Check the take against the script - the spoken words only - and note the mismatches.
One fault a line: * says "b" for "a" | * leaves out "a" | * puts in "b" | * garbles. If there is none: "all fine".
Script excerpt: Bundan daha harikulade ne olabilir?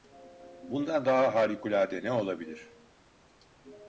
all fine